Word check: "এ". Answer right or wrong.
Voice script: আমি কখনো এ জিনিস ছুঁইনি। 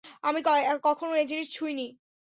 right